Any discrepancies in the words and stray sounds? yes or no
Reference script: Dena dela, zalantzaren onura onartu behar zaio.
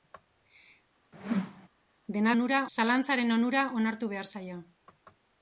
yes